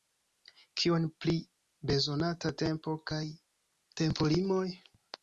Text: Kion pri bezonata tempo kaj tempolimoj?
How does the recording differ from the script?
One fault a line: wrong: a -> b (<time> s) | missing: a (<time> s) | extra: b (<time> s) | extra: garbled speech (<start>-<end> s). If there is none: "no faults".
no faults